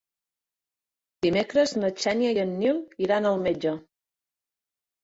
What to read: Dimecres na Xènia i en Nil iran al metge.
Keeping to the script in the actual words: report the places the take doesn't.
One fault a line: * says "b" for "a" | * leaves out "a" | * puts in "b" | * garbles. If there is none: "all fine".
all fine